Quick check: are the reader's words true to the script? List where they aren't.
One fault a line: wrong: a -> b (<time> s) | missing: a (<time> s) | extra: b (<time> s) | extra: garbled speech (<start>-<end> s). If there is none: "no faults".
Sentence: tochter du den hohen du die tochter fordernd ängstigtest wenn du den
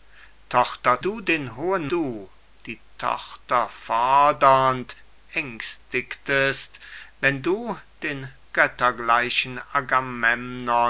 no faults